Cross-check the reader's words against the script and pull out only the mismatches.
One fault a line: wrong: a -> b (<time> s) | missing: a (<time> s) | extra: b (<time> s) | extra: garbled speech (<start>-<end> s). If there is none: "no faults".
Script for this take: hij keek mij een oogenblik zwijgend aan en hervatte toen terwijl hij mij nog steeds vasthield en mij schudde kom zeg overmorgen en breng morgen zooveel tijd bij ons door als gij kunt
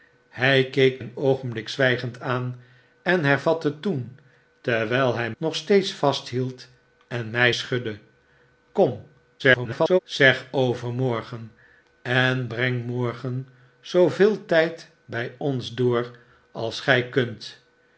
missing: mij (1.0 s)
missing: mij (5.3 s)
extra: garbled speech (9.4-10.0 s)